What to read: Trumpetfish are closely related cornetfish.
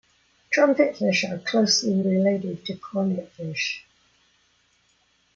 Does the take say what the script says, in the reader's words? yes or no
no